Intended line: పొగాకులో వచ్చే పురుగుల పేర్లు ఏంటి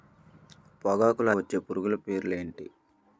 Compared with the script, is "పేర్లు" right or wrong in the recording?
right